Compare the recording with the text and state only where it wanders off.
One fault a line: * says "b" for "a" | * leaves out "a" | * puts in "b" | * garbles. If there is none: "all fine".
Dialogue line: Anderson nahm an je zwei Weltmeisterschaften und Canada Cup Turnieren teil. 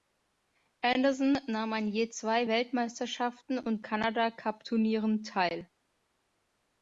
all fine